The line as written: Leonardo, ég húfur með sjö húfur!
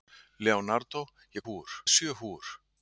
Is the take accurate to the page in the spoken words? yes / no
yes